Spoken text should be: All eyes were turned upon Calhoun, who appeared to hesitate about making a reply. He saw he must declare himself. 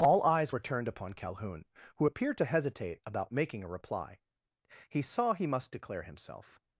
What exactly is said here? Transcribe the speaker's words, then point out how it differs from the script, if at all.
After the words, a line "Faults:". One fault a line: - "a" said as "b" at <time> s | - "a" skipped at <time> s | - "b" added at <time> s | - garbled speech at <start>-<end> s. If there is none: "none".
All eyes were turned upon Calhoun, who appeared to hesitate about making a reply. He saw he must declare himself.
Faults:
none